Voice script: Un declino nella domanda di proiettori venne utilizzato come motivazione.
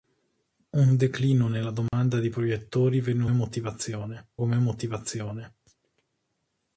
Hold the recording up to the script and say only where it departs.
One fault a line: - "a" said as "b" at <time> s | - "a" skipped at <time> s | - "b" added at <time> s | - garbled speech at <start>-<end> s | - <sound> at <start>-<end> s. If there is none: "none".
- dropout at 1.9-1.9 s
- "utilizzato" said as "motivazione" at 3.3 s